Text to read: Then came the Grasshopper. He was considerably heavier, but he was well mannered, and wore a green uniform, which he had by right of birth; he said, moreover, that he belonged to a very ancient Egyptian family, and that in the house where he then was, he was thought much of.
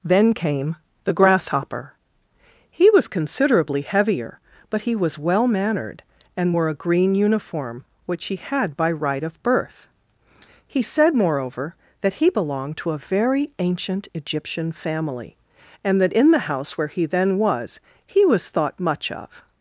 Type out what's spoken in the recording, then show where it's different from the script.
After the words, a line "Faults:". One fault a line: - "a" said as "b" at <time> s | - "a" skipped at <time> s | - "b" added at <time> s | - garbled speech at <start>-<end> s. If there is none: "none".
Then came the Grasshopper. He was considerably heavier, but he was well mannered, and wore a green uniform, which he had by right of birth; he said, moreover, that he belonged to a very ancient Egyptian family, and that in the house where he then was, he was thought much of.
Faults:
none